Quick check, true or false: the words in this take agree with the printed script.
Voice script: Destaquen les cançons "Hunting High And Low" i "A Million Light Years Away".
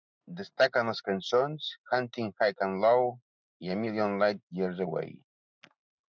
true